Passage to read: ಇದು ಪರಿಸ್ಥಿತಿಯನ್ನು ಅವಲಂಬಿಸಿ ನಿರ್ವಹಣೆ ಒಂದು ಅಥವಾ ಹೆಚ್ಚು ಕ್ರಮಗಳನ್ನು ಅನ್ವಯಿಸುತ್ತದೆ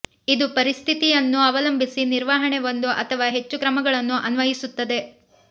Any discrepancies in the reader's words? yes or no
no